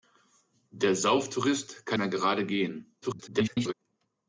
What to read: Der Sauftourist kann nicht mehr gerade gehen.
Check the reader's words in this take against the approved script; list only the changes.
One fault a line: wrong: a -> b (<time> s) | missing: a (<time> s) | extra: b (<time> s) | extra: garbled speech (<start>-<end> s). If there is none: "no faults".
missing: nicht (2.0 s)
extra: garbled speech (3.0-3.7 s)